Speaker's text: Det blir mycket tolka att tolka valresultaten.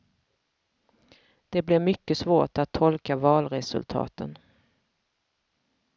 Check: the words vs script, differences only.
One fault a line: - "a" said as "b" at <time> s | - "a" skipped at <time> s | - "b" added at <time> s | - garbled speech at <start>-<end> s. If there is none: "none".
- "tolka" said as "svårt" at 2.1 s